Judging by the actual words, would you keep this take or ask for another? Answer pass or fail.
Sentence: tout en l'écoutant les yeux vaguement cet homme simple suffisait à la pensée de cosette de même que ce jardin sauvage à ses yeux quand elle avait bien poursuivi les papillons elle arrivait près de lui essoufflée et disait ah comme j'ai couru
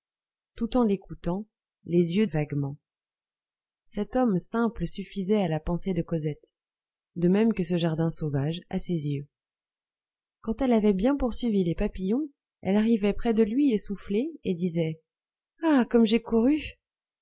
pass